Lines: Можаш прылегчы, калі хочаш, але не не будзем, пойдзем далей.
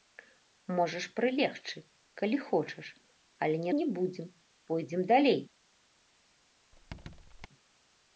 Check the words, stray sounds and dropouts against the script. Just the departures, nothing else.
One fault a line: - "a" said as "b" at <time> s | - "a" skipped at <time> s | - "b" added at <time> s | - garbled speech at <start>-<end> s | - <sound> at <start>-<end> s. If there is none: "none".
- squeak at 6.7-7.5 s